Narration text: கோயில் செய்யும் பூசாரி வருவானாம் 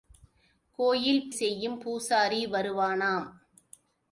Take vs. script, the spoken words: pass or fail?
pass